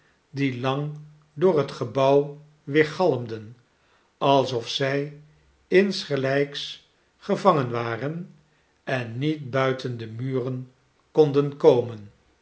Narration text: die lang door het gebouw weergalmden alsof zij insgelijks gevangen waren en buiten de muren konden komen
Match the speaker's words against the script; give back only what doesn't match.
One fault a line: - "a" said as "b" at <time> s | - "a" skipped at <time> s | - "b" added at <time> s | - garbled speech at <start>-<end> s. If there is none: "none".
- "niet" added at 9.2 s